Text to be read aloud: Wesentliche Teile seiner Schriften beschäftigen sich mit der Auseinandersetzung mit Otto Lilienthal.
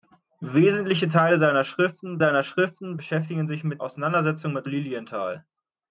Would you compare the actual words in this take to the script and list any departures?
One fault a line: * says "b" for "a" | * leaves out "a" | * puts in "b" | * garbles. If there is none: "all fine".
* puts in "seiner Schriften"
* leaves out "der"
* leaves out "Otto"